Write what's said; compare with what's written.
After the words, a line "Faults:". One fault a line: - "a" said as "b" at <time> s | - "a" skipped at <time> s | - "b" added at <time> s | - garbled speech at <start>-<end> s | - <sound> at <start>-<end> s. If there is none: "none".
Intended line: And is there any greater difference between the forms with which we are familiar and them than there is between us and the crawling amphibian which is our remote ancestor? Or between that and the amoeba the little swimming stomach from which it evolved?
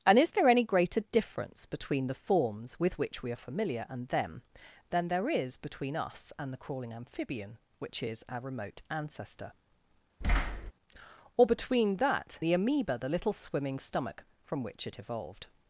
And is there any greater difference between the forms with which we are familiar and them than there is between us and the crawling amphibian which is our remote ancestor? Or between that the amoeba the little swimming stomach from which it evolved?
Faults:
- thud at 10.2-10.7 s
- "and" skipped at 12.4 s